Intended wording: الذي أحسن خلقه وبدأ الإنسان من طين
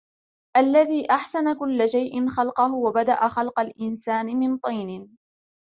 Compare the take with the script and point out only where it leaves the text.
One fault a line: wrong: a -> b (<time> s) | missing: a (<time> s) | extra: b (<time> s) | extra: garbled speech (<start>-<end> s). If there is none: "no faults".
extra: كل شيء (1.6 s)
extra: خلق (3.3 s)